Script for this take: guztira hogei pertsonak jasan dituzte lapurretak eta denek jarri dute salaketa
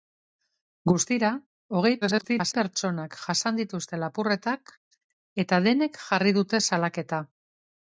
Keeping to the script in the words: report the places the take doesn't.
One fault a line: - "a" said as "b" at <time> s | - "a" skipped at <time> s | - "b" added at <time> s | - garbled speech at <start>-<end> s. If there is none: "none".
- garbled speech at 2.0-2.5 s